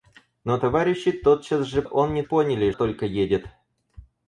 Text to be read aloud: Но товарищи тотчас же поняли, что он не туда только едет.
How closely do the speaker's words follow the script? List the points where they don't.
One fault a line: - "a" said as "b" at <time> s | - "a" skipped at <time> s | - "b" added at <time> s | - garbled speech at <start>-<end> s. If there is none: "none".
- "поняли что" skipped at 1.8 s
- "туда" said as "поняли" at 2.2 s